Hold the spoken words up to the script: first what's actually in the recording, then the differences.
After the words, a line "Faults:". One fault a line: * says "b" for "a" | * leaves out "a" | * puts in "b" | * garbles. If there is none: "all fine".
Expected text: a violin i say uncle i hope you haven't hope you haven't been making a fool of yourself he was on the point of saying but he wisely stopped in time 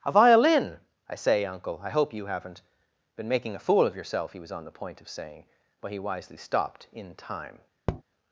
a violin i say uncle i hope you haven't been making a fool of yourself he was on the point of saying but he wisely stopped in time
Faults:
* leaves out "hope you haven't"